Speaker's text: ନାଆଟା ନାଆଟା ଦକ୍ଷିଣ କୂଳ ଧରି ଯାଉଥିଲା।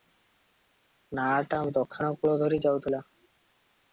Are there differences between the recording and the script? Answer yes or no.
yes